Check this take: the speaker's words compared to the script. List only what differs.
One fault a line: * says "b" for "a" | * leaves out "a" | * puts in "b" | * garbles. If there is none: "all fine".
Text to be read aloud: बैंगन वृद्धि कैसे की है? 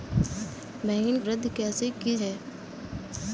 all fine